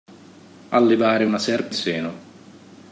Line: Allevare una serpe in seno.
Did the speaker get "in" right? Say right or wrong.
wrong